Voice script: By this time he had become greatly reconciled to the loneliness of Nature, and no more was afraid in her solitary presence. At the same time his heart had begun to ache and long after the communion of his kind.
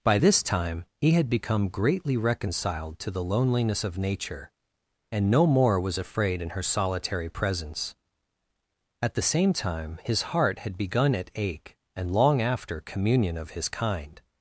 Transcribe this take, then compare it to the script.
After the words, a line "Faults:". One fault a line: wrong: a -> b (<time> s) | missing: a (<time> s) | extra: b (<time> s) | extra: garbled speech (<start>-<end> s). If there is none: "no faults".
By this time he had become greatly reconciled to the loneliness of Nature, and no more was afraid in her solitary presence. At the same time his heart had begun at ache and long after communion of his kind.
Faults:
wrong: to -> at (11.1 s)
missing: the (12.8 s)